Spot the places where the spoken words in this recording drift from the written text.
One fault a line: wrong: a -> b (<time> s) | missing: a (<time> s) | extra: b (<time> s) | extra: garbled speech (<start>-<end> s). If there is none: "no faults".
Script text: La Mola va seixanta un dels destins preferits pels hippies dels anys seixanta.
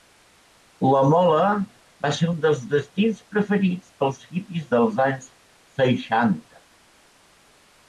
wrong: seixanta -> ser (2.2 s)